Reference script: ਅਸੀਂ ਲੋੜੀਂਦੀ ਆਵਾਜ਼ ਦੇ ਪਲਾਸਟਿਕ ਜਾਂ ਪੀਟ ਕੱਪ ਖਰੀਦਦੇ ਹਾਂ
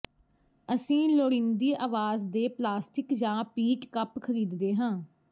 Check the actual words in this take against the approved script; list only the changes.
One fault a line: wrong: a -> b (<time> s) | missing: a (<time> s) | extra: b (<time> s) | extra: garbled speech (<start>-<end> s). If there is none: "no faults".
no faults